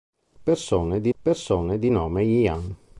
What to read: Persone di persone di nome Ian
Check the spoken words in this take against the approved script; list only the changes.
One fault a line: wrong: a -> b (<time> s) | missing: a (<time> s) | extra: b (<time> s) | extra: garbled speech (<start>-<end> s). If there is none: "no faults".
no faults